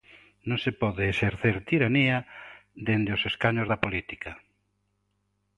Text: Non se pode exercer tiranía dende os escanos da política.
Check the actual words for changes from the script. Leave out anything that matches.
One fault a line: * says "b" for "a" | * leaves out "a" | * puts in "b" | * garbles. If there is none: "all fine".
all fine